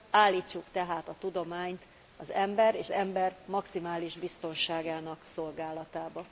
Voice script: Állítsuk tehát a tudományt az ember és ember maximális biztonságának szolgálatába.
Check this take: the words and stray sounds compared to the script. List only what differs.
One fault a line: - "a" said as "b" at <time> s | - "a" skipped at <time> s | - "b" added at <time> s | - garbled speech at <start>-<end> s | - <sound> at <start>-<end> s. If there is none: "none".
none